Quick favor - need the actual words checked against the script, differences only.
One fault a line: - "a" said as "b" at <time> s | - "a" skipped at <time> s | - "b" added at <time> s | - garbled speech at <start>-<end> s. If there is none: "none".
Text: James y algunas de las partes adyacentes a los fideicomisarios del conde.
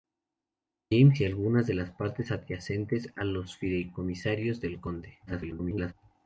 - garbled speech at 5.3-5.9 s